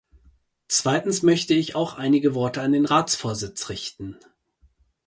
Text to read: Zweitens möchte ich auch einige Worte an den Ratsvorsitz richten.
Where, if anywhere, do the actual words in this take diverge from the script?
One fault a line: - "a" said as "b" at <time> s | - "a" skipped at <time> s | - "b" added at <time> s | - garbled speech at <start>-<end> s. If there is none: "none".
none